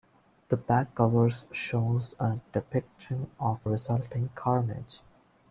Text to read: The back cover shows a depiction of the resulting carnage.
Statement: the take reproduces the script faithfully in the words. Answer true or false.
false